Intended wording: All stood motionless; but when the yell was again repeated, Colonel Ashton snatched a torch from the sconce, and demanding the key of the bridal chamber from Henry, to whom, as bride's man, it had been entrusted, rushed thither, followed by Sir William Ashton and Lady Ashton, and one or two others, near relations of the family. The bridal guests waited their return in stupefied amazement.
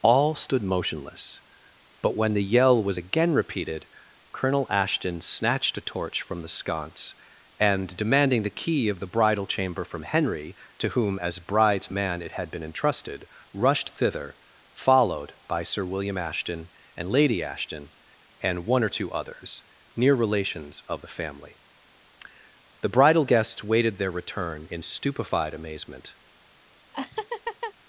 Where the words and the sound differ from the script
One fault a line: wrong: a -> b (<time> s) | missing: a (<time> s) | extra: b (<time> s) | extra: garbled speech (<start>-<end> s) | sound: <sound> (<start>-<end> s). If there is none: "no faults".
sound: laugh (26.9-27.7 s)